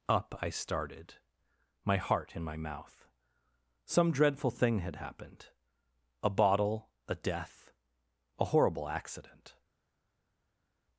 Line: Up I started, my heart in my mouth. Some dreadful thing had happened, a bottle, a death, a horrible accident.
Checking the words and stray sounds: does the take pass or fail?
pass